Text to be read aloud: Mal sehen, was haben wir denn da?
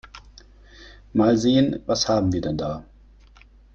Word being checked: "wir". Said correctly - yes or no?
yes